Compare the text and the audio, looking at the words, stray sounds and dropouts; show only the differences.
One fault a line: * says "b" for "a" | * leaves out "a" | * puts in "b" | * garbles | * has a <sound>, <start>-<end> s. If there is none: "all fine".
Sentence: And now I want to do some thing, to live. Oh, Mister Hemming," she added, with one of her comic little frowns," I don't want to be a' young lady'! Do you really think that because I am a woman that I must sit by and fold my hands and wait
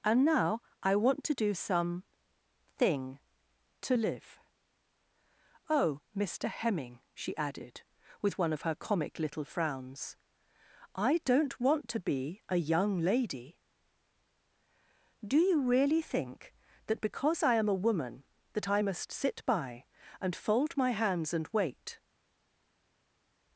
all fine